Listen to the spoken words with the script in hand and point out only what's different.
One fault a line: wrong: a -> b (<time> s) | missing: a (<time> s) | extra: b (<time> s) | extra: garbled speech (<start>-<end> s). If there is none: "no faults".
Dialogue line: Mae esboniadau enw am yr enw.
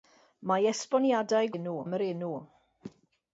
no faults